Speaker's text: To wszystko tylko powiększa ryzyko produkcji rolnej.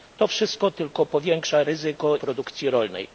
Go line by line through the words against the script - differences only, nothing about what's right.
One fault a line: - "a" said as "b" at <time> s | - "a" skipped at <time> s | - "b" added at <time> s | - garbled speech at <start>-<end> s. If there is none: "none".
none